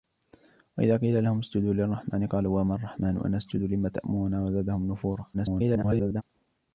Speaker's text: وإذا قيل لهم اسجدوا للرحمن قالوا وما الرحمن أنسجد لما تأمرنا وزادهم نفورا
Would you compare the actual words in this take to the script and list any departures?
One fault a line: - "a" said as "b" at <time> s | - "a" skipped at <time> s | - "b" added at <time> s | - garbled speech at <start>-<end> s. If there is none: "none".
- garbled speech at 5.3-6.2 s